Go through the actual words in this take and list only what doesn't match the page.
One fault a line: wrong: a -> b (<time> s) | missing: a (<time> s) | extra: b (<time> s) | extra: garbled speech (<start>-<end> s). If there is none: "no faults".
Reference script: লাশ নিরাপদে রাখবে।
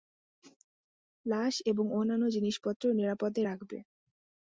extra: এবং অন্যান্য জিনিসপত্র (1.7 s)